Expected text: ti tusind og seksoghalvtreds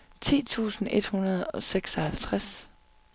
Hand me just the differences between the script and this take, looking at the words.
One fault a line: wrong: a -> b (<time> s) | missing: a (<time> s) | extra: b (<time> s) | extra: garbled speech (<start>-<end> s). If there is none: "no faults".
extra: et hundrede (0.9 s)